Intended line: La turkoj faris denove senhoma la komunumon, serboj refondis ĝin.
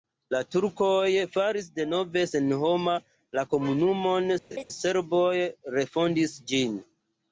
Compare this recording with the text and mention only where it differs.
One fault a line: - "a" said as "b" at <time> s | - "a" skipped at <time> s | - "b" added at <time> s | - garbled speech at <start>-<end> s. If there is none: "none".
none